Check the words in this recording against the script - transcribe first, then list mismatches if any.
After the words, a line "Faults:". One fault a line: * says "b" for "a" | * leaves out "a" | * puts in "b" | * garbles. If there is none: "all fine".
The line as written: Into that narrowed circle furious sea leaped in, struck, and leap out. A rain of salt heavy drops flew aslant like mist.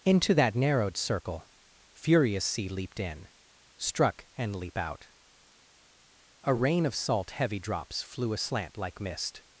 Into that narrowed circle furious sea leaped in, struck, and leap out. A rain of salt heavy drops flew aslant like mist.
Faults:
all fine